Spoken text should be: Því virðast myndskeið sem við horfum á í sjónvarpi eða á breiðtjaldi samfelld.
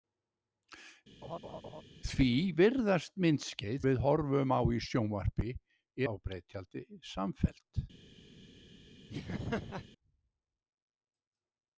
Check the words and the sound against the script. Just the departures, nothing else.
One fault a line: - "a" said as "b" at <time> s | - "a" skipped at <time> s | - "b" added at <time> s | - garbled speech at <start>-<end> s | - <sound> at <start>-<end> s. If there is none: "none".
- laugh at 1.2-1.8 s
- "sem" skipped at 3.8 s
- "eða" skipped at 5.5 s
- laugh at 9.1-9.9 s